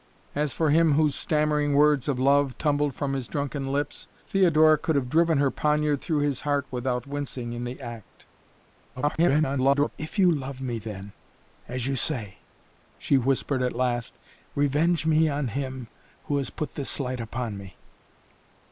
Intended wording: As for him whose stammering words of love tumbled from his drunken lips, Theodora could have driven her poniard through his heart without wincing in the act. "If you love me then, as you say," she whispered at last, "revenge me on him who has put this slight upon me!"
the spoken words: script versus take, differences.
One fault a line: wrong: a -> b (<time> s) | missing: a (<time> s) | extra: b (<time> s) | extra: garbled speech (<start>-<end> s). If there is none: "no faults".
extra: garbled speech (9.0-9.9 s)